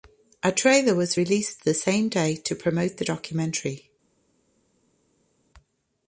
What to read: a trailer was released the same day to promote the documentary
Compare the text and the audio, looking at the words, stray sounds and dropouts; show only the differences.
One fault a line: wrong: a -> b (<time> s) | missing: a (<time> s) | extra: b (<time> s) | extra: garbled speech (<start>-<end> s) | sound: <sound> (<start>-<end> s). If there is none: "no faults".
no faults